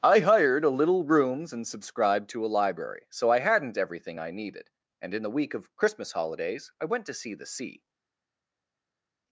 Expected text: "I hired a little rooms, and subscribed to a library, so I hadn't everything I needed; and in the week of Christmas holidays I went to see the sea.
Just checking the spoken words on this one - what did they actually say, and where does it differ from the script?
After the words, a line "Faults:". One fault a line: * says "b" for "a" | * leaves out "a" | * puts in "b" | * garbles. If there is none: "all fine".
"I hired a little rooms, and subscribed to a library, so I hadn't everything I needed; and in the week of Christmas holidays I went to see the sea.
Faults:
all fine